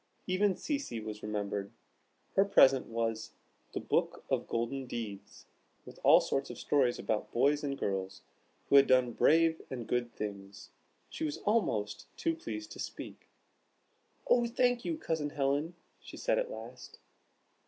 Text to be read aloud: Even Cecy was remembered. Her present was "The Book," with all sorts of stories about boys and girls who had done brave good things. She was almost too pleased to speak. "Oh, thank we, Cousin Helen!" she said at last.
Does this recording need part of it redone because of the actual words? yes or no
yes